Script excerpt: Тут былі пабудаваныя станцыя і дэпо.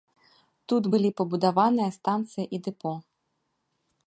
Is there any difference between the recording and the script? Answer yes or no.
no